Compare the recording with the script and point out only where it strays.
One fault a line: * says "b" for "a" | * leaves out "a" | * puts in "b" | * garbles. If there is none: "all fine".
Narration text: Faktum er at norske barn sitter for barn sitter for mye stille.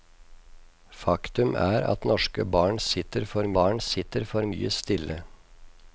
all fine